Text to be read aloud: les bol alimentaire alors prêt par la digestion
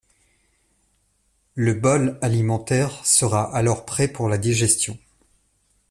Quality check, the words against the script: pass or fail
fail